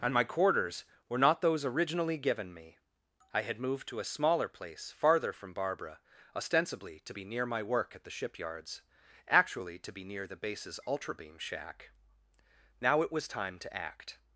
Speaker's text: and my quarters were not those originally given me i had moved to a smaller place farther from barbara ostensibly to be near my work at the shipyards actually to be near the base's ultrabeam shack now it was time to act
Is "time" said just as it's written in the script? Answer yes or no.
yes